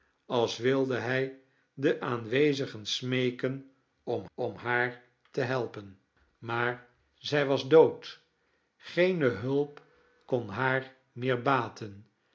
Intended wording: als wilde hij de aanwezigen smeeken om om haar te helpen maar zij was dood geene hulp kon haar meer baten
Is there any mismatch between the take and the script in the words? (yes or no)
no